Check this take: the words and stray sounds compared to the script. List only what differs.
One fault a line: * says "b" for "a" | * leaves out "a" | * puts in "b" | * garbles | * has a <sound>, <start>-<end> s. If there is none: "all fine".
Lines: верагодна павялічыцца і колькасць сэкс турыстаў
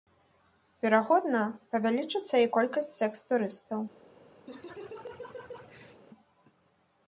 * has a laugh, 4.5-6.0 s